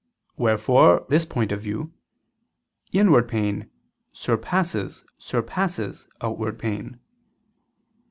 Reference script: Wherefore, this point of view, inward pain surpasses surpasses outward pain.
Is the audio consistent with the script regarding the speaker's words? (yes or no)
yes